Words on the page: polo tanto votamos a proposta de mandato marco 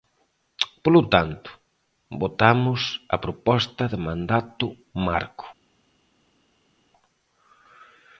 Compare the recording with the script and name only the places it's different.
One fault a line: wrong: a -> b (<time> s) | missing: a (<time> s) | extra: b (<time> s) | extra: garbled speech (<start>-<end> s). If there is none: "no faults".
no faults